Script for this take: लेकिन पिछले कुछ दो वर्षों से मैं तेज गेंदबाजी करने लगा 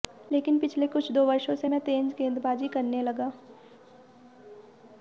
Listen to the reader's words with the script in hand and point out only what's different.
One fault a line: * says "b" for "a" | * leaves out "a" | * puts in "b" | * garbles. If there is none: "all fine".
all fine